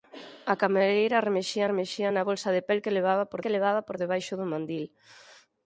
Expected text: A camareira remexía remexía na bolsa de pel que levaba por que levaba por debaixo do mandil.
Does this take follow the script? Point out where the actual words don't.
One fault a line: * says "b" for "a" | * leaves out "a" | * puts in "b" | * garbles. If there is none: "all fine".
all fine